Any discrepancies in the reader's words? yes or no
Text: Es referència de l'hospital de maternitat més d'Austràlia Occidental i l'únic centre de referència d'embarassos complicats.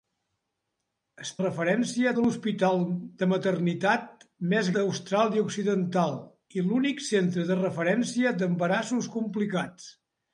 no